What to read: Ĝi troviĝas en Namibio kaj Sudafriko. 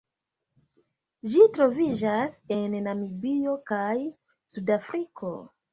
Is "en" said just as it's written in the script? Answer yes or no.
yes